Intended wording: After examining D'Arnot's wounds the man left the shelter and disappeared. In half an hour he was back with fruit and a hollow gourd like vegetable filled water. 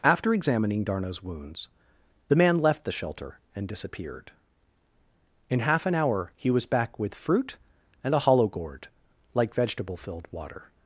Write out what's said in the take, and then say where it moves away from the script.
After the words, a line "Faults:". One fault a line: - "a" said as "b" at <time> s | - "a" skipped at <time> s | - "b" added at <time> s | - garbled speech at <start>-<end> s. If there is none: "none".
After examining D'Arnot's wounds the man left the shelter and disappeared. In half an hour he was back with fruit and a hollow gourd like vegetable filled water.
Faults:
none